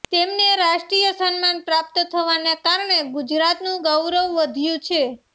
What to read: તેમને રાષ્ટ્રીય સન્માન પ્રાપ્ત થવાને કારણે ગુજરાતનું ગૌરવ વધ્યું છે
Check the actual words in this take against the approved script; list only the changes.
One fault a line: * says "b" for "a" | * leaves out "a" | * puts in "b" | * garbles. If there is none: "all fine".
all fine